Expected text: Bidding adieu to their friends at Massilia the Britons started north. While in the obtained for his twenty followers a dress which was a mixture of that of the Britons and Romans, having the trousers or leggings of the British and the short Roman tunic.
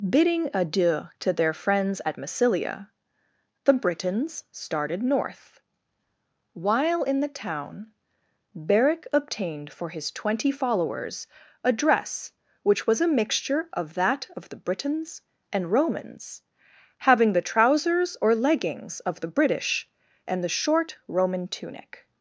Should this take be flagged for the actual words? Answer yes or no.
yes